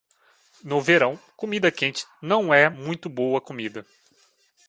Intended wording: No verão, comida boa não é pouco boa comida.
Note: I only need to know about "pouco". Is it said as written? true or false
false